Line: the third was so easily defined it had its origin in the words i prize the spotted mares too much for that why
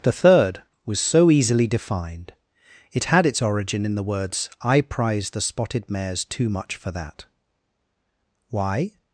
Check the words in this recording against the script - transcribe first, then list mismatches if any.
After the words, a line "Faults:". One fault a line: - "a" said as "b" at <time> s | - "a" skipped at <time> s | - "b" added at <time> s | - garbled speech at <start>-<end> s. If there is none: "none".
the third was so easily defined it had its origin in the words i prize the spotted mares too much for that why
Faults:
none